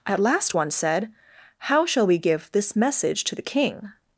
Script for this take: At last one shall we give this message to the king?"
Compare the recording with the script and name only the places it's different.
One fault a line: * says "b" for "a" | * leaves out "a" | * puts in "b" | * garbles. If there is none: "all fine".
* puts in "said How"